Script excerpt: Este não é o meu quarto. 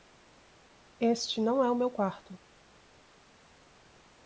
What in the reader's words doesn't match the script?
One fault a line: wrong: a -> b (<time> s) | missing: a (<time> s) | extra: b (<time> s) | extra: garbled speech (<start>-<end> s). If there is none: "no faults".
no faults